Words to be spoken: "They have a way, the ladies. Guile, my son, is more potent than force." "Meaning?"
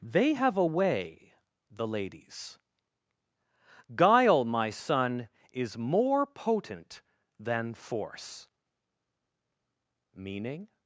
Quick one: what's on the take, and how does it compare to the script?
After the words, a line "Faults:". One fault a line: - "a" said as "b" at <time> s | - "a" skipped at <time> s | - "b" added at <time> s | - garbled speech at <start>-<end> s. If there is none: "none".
"They have a way, the ladies. Guile, my son, is more potent than force." "Meaning?"
Faults:
none